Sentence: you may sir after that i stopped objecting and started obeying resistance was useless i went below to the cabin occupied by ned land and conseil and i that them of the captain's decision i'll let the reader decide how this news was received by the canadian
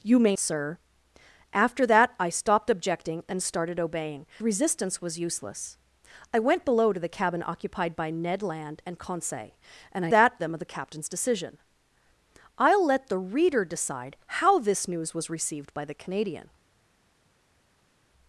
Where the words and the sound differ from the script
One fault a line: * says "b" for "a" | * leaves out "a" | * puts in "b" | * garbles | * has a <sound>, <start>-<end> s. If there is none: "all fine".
all fine